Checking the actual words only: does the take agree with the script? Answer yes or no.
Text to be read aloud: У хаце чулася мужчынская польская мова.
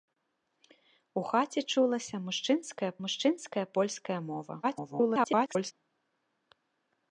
no